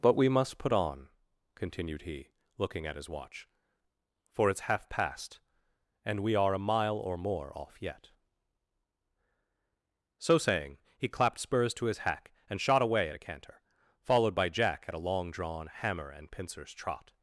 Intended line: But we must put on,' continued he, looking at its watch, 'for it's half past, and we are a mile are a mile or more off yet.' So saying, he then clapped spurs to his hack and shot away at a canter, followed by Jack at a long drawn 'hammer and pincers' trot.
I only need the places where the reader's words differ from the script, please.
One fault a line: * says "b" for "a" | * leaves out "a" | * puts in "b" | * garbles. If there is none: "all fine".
* says "his" for "its"
* leaves out "are a mile"
* leaves out "then"